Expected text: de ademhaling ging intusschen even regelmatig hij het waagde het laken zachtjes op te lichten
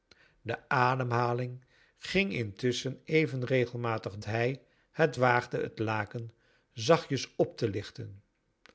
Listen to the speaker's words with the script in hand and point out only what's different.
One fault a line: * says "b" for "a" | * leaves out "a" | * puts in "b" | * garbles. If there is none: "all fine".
all fine